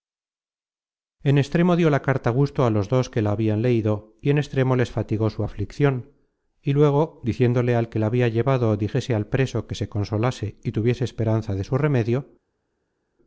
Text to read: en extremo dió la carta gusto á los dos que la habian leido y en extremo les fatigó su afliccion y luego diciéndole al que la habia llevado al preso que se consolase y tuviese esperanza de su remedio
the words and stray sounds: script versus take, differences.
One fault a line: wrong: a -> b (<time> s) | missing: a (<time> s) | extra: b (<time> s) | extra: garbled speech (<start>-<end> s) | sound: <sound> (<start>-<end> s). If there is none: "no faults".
extra: dijese (8.8 s)